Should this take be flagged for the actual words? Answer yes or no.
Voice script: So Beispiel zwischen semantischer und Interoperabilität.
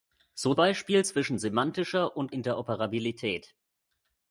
no